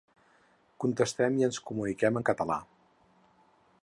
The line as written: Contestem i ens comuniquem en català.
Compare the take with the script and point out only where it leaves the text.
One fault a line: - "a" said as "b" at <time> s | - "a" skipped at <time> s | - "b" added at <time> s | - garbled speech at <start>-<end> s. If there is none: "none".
none